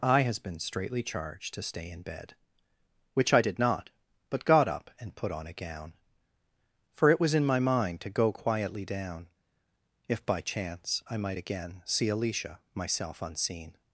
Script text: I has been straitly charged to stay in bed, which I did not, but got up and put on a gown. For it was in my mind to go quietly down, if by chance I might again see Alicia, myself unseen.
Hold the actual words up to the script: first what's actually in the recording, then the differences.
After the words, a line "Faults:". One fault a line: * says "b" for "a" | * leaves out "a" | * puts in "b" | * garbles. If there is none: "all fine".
I has been straitly charged to stay in bed, which I did not, but got up and put on a gown. For it was in my mind to go quietly down, if by chance I might again see Alicia, myself unseen.
Faults:
all fine